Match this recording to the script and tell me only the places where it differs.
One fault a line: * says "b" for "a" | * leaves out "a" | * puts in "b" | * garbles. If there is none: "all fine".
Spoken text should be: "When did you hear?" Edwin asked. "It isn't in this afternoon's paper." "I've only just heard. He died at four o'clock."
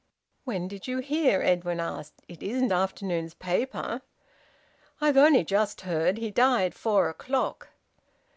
* leaves out "in this"
* leaves out "at"